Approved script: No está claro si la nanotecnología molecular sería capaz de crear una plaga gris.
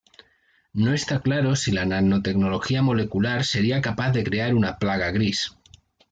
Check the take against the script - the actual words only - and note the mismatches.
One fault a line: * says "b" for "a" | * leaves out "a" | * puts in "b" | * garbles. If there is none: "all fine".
all fine